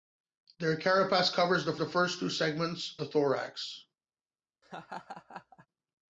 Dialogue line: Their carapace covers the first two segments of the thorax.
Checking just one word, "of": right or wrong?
wrong